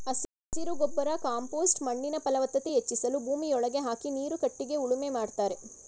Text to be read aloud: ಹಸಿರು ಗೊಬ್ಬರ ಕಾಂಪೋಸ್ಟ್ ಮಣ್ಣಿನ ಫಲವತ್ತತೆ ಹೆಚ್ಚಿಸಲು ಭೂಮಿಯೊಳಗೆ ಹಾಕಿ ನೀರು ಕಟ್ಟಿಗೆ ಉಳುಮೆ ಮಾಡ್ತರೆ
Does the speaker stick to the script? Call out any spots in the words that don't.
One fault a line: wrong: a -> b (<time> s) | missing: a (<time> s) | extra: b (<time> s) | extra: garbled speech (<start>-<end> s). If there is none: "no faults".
no faults